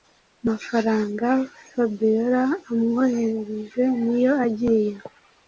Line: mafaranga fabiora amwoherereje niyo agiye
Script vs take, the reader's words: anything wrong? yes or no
no